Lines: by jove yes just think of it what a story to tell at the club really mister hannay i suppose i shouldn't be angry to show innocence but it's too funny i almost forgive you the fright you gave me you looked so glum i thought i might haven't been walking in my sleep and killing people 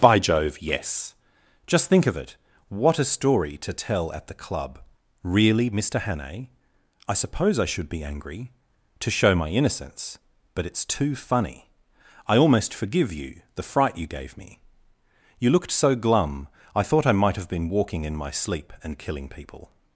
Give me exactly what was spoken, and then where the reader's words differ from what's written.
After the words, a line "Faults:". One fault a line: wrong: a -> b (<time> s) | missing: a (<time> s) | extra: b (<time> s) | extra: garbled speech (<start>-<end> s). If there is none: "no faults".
by jove yes just think of it what a story to tell at the club really mister hannay i suppose i should be angry to show my innocence but it's too funny i almost forgive you the fright you gave me you looked so glum i thought i might have been walking in my sleep and killing people
Faults:
wrong: shouldn't -> should (7.7 s)
extra: my (9.3 s)
wrong: haven't -> have (17.4 s)